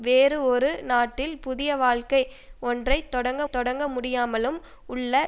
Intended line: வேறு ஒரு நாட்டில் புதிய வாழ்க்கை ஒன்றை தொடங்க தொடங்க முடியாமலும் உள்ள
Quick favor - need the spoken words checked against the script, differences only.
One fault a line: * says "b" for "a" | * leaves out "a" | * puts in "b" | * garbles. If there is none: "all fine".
all fine